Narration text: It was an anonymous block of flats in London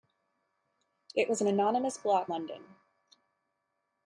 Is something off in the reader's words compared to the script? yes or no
yes